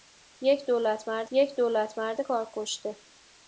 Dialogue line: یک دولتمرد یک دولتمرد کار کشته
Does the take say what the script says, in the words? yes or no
yes